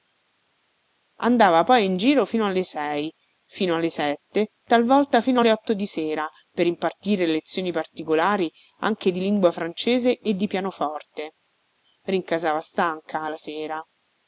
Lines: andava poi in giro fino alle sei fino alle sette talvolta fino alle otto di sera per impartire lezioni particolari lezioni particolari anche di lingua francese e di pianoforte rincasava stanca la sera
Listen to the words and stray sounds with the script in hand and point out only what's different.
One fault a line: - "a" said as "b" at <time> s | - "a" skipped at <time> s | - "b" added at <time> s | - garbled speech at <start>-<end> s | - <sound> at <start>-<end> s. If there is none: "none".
- "lezioni particolari" skipped at 8.5 s